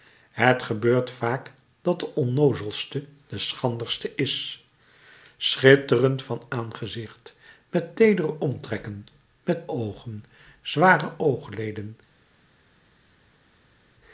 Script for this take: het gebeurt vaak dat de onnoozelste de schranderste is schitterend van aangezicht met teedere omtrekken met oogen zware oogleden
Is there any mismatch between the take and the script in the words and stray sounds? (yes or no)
no